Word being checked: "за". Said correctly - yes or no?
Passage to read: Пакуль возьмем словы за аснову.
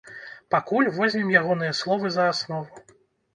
yes